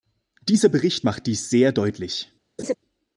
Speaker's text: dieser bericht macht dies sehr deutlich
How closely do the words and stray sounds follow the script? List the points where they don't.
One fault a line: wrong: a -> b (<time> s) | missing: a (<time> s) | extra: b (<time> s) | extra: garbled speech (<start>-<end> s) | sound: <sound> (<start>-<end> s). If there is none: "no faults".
sound: laugh (2.6-2.7 s)